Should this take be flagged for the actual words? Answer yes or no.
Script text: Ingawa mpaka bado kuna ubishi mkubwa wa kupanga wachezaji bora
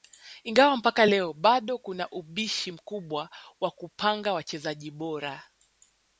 yes